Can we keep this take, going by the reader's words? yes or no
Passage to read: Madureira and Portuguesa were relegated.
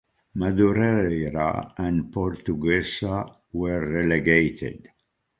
yes